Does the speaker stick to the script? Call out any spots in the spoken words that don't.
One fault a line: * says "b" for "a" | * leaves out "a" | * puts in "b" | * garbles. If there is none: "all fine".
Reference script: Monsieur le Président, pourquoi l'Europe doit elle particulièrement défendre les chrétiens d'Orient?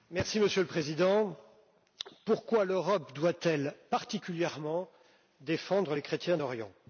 all fine